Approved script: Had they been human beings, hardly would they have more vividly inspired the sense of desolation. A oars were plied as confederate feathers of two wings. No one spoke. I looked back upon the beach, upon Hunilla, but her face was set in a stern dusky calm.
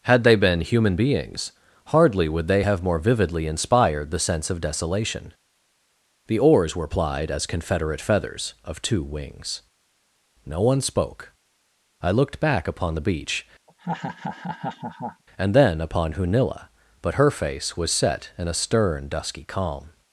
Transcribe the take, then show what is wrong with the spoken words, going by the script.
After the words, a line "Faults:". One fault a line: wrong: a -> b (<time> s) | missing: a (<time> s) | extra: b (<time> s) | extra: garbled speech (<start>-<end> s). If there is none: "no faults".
Had they been human beings, hardly would they have more vividly inspired the sense of desolation. The oars were plied as confederate feathers of two wings. No one spoke. I looked back upon the beach, and then upon Hunilla, but her face was set in a stern dusky calm.
Faults:
wrong: A -> The (6.3 s)
extra: and then (15.4 s)